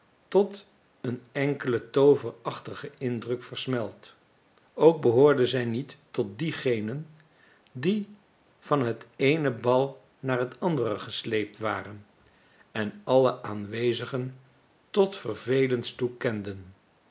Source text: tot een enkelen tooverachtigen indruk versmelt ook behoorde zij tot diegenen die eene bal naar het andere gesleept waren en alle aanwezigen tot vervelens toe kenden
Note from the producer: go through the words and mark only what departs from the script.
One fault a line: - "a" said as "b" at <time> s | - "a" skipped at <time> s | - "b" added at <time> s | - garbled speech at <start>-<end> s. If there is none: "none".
- "niet" added at 5.7 s
- "van het" added at 8.6 s